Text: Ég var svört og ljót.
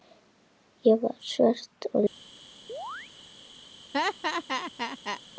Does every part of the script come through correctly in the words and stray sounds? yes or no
no